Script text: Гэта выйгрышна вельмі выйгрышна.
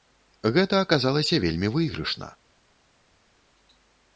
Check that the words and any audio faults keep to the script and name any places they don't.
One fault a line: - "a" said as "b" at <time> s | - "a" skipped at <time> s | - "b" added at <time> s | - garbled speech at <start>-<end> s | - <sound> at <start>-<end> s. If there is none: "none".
- "выйгрышна" said as "аказалася" at 0.8 s